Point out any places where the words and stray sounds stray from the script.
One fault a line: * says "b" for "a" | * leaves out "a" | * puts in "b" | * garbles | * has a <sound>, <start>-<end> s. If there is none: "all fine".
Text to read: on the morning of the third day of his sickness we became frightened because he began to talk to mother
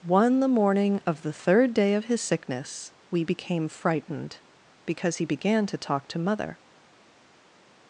* says "one" for "on"